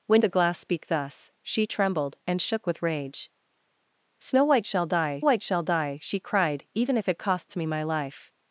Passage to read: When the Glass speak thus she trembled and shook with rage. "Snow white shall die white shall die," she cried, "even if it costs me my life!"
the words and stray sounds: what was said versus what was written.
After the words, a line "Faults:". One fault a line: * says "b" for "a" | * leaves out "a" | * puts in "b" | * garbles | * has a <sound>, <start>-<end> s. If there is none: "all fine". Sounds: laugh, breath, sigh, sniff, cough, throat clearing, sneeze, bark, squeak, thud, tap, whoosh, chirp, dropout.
When the Glass speak thus she trembled and shook with rage. "Snow white shall die white shall die," she cried, "even if it costs me my life!"
Faults:
all fine